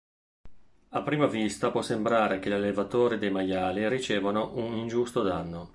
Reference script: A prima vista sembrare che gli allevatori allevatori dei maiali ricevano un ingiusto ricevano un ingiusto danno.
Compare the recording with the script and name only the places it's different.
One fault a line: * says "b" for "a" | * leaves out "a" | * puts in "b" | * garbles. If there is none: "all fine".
* puts in "può"
* leaves out "allevatori"
* leaves out "ricevano un ingiusto"